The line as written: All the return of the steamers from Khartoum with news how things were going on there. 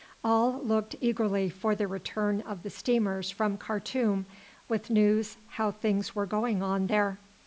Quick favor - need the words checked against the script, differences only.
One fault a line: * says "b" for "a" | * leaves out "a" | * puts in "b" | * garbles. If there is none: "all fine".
* puts in "looked eagerly for"